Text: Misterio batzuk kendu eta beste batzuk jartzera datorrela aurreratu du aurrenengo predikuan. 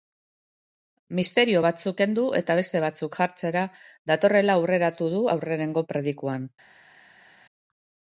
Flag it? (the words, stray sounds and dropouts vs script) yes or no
no